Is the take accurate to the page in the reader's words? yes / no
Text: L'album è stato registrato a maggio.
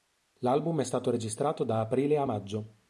no